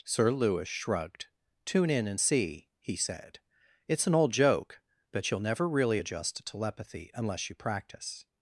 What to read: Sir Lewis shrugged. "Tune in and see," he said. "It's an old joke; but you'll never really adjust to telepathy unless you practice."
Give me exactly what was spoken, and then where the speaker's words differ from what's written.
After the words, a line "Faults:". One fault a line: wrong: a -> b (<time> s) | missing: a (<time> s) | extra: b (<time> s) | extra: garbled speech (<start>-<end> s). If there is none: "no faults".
Sir Lewis shrugged. "Tune in and see," he said. "It's an old joke; but you'll never really adjust to telepathy unless you practice."
Faults:
no faults